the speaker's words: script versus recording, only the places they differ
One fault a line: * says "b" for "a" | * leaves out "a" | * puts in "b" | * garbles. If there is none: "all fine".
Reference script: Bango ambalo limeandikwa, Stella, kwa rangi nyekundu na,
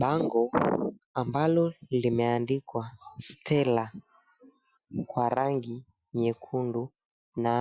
all fine